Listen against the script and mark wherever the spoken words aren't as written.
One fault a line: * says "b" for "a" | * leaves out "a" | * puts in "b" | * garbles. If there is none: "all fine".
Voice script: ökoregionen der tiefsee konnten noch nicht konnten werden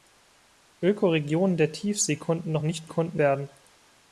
all fine